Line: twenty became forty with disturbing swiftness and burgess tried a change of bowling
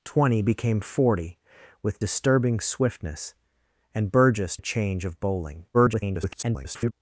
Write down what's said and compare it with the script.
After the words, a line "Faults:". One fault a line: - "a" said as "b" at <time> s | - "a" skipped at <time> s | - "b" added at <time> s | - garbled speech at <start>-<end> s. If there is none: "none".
twenty became forty with disturbing swiftness and burgess a change of bowling [garbled]
Faults:
- "tried" skipped at 4.6 s
- garbled speech at 5.7-6.9 s